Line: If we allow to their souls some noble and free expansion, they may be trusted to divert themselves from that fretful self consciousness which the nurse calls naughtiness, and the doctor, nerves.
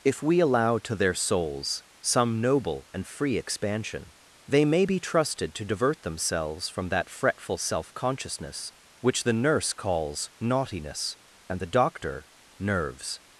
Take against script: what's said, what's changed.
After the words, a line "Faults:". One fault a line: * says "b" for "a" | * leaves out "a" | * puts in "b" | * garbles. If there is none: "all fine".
If we allow to their souls some noble and free expansion, they may be trusted to divert themselves from that fretful self consciousness which the nurse calls naughtiness, and the doctor, nerves.
Faults:
all fine